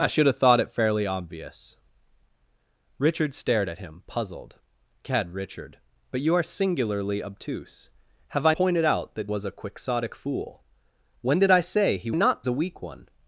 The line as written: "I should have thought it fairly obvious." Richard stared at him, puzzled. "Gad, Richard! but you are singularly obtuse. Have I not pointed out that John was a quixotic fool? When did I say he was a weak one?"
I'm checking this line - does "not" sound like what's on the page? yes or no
no